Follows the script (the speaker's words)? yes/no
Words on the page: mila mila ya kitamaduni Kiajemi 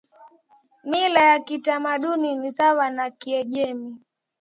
no